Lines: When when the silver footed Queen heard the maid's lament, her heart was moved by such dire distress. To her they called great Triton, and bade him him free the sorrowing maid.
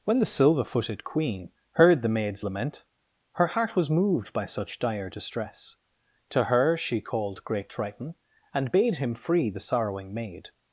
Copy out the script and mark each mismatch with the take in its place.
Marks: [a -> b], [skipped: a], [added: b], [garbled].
When [skipped: when] the silver footed Queen heard the maid's lament, her heart was moved by such dire distress. To her [they -> she] called great Triton, and bade him [skipped: him] free the sorrowing maid.